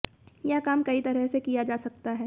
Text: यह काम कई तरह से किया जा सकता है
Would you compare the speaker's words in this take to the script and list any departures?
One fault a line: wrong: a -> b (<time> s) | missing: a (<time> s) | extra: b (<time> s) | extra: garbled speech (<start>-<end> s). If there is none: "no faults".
no faults